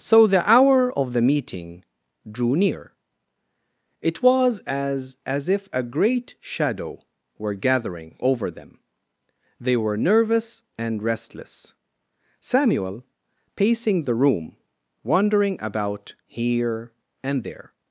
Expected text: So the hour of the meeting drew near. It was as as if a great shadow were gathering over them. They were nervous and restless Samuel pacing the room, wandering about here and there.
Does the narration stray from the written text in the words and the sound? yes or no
no